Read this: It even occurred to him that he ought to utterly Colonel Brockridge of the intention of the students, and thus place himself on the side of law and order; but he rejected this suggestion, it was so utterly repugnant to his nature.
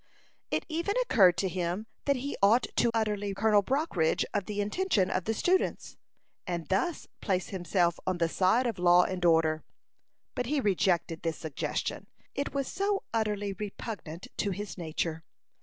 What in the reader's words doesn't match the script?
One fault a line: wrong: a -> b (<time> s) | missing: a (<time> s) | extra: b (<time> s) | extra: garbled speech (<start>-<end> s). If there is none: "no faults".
no faults